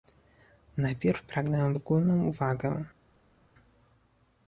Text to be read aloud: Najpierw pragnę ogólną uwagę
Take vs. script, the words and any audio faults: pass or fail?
pass